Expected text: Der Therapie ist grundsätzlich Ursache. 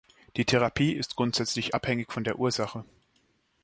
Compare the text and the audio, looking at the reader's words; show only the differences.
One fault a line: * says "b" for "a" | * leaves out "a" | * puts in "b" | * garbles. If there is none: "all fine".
* says "Die" for "Der"
* puts in "abhängig von der"